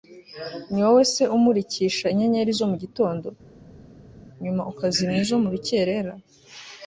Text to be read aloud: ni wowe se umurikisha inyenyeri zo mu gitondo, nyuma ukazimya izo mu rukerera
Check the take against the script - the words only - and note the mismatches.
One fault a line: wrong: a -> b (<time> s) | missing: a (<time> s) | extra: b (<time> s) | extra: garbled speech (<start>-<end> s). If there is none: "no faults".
no faults